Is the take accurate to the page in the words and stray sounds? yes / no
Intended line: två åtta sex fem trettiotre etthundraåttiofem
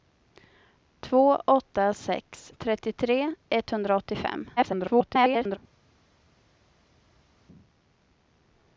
no